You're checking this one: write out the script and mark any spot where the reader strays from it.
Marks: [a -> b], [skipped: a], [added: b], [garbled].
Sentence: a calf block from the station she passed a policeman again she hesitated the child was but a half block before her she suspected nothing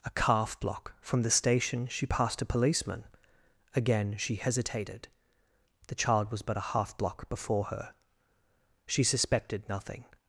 a calf block from the station she passed a policeman again she hesitated the child was but a half block before her she suspected nothing